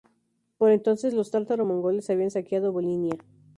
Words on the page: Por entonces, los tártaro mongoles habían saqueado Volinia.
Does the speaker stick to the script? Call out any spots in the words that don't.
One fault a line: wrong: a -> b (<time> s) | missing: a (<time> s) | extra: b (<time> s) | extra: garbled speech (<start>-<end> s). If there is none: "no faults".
no faults